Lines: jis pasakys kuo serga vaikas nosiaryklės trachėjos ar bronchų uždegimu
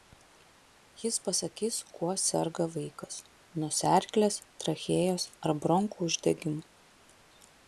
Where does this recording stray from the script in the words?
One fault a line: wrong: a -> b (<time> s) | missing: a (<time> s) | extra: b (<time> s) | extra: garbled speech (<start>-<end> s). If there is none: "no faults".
no faults